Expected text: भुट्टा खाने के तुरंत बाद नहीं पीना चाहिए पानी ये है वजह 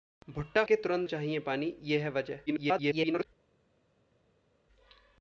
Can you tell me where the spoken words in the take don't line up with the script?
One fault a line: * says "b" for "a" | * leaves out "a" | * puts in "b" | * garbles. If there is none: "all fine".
* leaves out "खाने"
* leaves out "बाद नहीं पीना"
* garbles